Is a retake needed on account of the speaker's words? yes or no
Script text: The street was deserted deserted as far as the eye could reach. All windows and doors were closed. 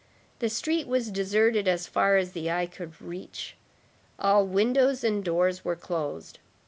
yes